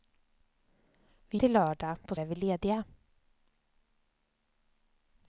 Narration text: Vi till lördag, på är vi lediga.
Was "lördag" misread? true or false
false